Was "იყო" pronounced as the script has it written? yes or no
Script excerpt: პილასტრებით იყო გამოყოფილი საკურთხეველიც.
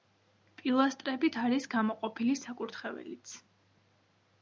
no